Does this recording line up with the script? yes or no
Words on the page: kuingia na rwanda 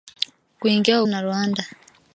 yes